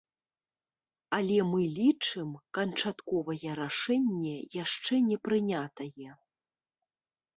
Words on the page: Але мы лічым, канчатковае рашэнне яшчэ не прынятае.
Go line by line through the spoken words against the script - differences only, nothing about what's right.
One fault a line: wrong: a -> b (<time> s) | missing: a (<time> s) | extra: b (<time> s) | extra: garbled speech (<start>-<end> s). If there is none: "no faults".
no faults